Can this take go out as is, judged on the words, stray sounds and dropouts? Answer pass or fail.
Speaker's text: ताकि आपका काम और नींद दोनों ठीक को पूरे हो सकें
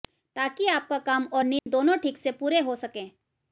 fail